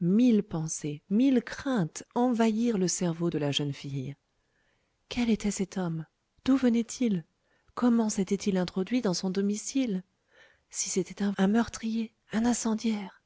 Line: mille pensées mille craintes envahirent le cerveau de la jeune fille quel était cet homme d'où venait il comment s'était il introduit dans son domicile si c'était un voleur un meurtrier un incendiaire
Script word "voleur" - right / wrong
wrong